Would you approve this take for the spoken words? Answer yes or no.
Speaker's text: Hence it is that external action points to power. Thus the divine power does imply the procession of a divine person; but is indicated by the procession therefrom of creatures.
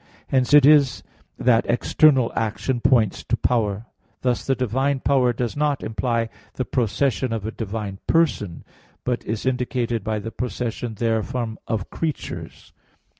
no